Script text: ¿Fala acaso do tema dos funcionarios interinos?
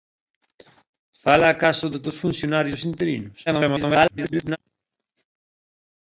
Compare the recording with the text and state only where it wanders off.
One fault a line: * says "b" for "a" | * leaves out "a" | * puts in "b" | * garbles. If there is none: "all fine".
* leaves out "tema"
* garbles